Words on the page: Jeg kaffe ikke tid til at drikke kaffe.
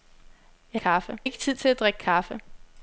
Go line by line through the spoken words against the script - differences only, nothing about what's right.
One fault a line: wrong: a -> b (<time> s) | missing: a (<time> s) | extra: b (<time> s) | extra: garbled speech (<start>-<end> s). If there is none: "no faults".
no faults